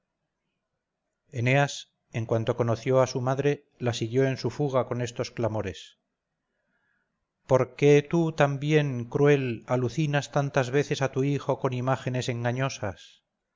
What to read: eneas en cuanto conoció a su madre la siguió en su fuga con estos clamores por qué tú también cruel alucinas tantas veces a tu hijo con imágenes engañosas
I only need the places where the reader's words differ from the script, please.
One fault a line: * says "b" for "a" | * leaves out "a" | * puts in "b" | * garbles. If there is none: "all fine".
all fine